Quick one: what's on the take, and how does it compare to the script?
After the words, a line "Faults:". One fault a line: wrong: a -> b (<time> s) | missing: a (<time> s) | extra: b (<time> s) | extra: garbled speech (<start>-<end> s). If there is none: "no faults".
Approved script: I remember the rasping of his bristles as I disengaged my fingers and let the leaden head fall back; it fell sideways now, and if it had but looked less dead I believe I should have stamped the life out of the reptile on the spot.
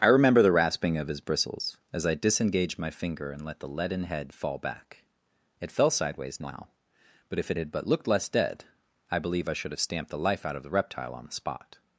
I remember the rasping of his bristles as I disengaged my finger and let the leaden head fall back; it fell sideways now, but if it had but looked less dead I believe I should have stamped the life out of the reptile on the spot.
Faults:
wrong: fingers -> finger (2.9 s)
wrong: and -> but (7.3 s)